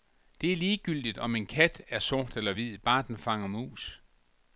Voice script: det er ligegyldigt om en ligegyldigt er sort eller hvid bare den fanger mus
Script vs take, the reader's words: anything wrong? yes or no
yes